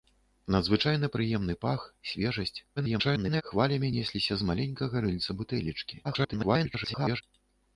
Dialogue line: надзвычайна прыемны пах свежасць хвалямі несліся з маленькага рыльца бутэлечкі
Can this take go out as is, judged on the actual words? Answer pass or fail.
fail